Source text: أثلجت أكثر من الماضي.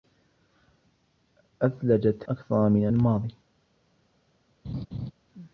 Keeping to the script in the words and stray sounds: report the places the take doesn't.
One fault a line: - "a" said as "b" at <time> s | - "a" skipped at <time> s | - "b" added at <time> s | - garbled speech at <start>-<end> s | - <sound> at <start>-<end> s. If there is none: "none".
- laugh at 4.6-5.1 s